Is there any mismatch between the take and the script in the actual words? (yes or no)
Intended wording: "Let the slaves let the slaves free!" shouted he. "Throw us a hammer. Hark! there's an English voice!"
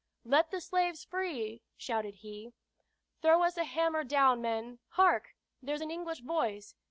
yes